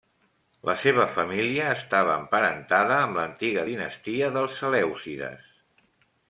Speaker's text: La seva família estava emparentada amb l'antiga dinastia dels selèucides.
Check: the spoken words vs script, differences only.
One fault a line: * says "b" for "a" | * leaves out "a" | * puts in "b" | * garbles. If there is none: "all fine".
all fine